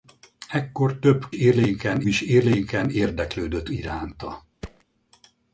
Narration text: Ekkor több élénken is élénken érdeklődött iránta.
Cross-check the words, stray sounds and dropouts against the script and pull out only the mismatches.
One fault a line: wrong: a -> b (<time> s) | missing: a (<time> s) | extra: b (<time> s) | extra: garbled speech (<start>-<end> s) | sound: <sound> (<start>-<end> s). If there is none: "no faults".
sound: thud (4.6-4.8 s)